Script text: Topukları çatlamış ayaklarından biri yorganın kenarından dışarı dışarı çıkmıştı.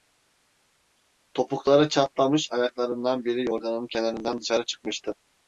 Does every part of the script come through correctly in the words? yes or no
no